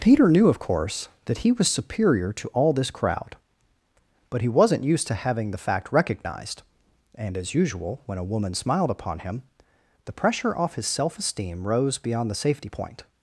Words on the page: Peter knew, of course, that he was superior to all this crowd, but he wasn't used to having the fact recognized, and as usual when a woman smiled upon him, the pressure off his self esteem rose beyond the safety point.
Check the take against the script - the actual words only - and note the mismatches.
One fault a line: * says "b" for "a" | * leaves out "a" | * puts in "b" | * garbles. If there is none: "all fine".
all fine